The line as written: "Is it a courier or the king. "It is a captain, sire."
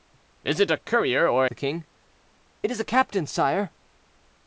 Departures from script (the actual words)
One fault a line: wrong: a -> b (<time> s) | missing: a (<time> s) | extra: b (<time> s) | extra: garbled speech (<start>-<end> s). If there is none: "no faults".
no faults